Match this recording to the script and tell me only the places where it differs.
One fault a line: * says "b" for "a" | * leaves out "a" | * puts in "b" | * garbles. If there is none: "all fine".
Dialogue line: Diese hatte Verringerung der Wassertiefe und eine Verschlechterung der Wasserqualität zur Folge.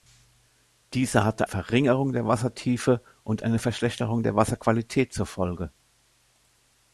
all fine